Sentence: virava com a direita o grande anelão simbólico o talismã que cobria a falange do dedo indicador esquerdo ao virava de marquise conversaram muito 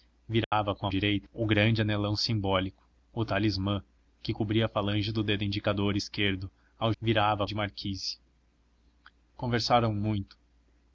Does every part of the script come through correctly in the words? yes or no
yes